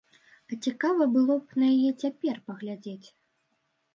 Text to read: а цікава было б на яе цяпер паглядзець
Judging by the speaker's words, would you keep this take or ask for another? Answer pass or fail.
pass